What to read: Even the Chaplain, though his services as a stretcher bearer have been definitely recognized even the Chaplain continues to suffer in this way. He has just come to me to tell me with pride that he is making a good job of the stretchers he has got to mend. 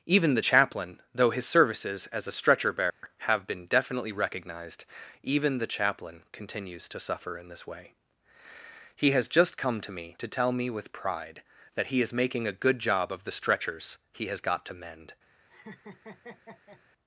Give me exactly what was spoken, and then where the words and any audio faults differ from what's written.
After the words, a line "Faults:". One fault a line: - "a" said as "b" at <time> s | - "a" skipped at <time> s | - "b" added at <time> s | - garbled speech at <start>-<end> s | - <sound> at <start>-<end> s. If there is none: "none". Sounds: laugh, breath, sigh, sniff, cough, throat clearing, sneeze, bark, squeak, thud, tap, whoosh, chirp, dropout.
Even the Chaplain, though his services as a stretcher bearer have been definitely recognized even the Chaplain continues to suffer in this way. He has just come to me to tell me with pride that he is making a good job of the stretchers he has got to mend.
Faults:
- dropout at 2.9-3.0 s
- laugh at 15.5-16.8 s